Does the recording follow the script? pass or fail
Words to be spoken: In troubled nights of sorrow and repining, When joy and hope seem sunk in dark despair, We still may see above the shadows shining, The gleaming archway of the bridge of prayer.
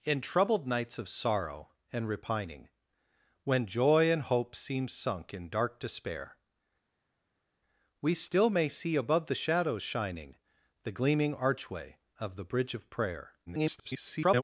fail